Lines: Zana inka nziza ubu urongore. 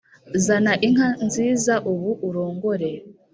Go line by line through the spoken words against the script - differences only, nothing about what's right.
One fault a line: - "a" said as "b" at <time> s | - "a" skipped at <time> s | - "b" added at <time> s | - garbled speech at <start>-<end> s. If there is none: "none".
none